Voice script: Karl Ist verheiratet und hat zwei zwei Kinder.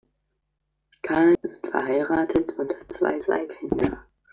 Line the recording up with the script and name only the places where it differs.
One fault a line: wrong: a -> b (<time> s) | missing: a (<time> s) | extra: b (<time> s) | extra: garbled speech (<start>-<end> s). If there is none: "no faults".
no faults